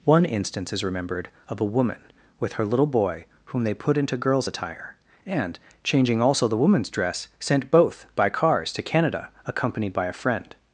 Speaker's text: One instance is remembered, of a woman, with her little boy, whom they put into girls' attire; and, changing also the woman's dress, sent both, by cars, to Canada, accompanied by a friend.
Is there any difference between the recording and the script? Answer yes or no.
no